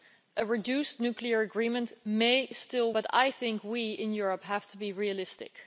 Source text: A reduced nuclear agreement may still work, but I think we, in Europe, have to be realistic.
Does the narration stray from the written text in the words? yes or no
yes